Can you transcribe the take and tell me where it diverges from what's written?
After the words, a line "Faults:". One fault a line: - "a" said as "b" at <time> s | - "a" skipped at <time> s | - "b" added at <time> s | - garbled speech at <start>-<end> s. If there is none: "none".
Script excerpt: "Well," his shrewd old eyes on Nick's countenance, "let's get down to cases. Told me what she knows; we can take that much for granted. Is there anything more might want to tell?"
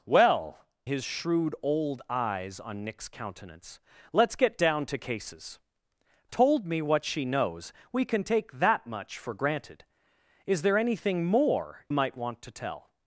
"Well," his shrewd old eyes on Nick's countenance, "let's get down to cases. Told me what she knows; we can take that much for granted. Is there anything more might want to tell?"
Faults:
none